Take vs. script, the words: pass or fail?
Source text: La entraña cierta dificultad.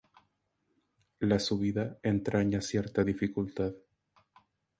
fail